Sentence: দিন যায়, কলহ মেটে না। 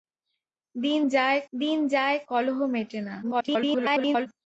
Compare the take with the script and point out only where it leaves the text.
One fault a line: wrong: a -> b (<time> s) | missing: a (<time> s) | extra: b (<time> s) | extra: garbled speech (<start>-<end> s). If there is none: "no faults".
extra: দিন যায় (1.5 s)
extra: garbled speech (3.2-4.3 s)